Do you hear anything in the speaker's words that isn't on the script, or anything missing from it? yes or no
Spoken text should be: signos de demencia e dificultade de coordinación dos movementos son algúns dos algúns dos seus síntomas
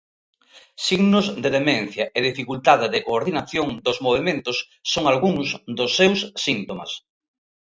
yes